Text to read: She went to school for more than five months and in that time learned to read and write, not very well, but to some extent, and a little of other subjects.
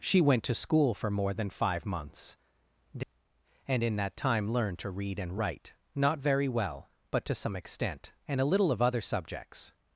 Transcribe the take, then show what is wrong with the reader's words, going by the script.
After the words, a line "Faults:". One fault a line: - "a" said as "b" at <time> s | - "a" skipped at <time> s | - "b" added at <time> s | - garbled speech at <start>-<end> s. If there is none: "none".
She went to school for more than five months and in that time learned to read and write, not very well, but to some extent, and a little of other subjects.
Faults:
none